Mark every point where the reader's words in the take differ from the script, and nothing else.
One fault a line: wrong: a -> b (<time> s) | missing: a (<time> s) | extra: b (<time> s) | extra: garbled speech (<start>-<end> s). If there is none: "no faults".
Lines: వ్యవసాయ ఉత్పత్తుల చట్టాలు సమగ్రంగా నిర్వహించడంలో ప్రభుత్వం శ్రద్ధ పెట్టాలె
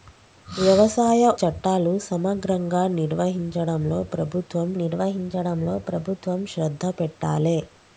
missing: ఉత్పత్తుల (1.2 s)
extra: నిర్వహించడంలో ప్రభుత్వం (4.8 s)